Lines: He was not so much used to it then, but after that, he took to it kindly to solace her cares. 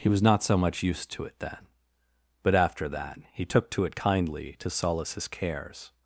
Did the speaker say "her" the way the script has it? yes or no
no